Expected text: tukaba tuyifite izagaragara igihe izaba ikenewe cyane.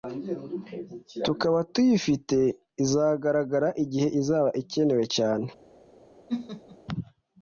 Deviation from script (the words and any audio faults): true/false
true